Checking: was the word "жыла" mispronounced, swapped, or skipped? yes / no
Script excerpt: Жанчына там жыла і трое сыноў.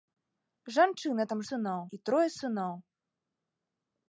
yes